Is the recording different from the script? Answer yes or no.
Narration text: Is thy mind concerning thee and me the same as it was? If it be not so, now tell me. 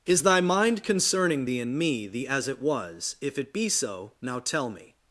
yes